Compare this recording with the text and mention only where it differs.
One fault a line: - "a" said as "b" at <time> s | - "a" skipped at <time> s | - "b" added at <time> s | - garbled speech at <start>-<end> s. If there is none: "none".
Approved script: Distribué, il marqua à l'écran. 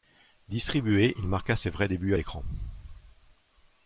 - "ses vrais débuts" added at 1.6 s